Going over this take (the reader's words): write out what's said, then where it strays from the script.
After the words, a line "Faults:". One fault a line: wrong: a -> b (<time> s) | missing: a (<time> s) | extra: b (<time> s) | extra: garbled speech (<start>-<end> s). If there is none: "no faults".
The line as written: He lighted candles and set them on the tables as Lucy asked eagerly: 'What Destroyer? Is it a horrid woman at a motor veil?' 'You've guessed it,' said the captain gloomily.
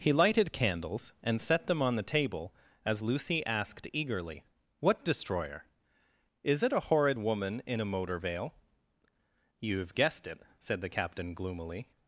He lighted candles and set them on the table as Lucy asked eagerly: 'What Destroyer? Is it a horrid woman in a motor veil?' 'You've guessed it,' said the captain gloomily.
Faults:
wrong: tables -> table (2.0 s)
wrong: at -> in (7.7 s)